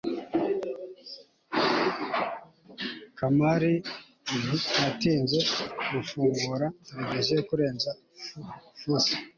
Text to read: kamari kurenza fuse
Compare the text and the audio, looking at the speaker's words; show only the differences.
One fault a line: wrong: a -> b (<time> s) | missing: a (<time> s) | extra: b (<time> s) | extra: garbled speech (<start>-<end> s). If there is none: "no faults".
extra: ntiyatinze gufungura televiziyo (4.5 s)